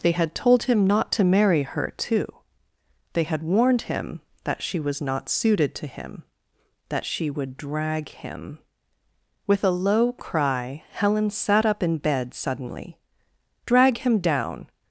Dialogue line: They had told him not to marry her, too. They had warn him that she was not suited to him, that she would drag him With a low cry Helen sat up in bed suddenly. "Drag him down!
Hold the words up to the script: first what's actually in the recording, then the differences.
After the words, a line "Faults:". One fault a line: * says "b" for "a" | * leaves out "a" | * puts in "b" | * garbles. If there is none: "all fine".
They had told him not to marry her, too. They had warned him that she was not suited to him, that she would drag him With a low cry Helen sat up in bed suddenly. "Drag him down!
Faults:
* says "warned" for "warn"